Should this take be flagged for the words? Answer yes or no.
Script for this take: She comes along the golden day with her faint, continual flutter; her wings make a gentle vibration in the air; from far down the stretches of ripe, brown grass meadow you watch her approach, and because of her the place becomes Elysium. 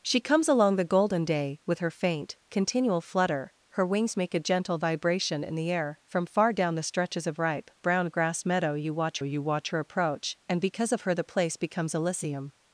yes